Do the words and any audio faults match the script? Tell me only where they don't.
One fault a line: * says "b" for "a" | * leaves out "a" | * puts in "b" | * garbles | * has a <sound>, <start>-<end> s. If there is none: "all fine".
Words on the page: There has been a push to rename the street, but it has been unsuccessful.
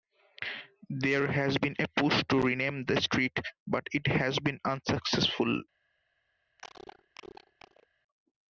* has a cough, 6.6-7.9 s